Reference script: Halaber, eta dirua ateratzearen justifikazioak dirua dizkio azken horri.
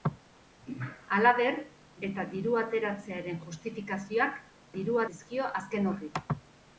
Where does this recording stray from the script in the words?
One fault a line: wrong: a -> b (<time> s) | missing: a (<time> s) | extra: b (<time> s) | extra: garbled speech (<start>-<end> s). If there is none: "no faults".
no faults